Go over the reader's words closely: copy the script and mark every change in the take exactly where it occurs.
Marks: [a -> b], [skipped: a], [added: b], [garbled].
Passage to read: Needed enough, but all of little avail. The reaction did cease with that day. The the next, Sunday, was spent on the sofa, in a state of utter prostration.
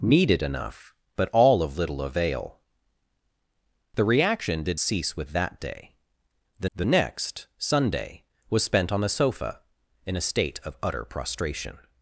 Needed enough, but all of little avail. The reaction did cease with that day. The the next, Sunday, was spent on the sofa, in a state of utter prostration.